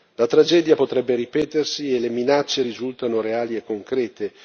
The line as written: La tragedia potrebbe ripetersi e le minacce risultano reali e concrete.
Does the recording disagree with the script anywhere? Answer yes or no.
no